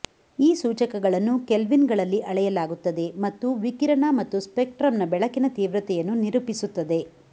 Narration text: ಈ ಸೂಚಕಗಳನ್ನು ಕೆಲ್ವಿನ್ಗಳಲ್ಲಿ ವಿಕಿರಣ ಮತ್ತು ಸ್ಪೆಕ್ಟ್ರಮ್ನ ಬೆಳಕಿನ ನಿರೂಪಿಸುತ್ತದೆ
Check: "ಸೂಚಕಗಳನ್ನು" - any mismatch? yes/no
no